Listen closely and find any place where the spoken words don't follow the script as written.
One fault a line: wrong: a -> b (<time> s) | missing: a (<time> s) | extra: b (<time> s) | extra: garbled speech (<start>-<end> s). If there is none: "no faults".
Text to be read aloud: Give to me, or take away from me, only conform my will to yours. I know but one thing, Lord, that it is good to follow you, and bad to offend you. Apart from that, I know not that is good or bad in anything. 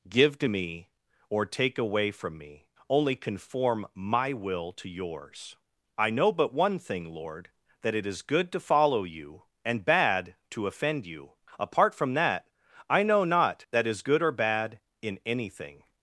no faults